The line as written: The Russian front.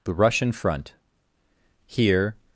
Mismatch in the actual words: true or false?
true